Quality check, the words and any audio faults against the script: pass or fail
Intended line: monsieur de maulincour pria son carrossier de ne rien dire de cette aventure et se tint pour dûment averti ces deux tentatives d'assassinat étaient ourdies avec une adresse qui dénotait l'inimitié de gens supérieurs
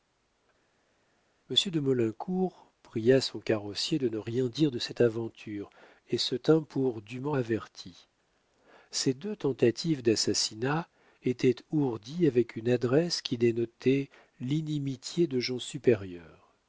pass